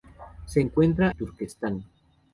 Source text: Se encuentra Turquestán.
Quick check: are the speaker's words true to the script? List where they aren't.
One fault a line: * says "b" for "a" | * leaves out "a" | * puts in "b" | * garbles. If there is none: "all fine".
all fine